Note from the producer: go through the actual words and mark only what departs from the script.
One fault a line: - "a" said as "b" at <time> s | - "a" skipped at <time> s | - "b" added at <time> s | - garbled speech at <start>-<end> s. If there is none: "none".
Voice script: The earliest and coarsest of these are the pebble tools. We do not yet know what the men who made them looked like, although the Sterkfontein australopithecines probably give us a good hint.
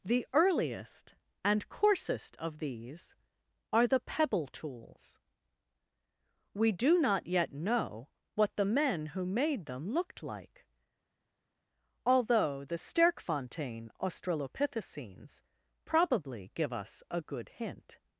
none